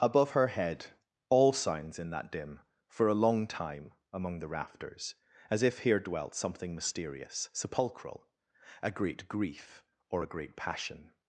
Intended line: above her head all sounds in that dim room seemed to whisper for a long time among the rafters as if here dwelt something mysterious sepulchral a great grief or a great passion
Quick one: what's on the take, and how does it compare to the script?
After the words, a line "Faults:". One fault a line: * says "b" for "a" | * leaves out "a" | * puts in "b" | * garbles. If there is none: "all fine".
above her head all sounds in that dim for a long time among the rafters as if here dwelt something mysterious sepulchral a great grief or a great passion
Faults:
* leaves out "room seemed to whisper"